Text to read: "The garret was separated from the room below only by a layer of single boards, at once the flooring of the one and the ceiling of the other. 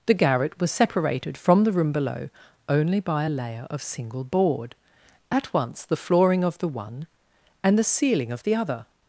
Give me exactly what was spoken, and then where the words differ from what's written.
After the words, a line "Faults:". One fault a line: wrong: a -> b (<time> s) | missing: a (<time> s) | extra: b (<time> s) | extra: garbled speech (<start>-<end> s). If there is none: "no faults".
"The garret was separated from the room below only by a layer of single board, at once the flooring of the one and the ceiling of the other.
Faults:
wrong: boards -> board (4.2 s)